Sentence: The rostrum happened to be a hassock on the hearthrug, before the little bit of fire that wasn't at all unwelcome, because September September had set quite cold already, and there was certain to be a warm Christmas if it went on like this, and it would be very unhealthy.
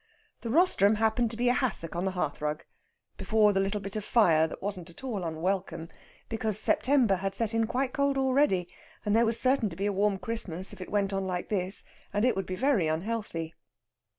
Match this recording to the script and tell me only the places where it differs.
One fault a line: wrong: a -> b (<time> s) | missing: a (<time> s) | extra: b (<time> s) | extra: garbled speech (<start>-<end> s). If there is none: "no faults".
missing: September (7.2 s)
extra: in (7.5 s)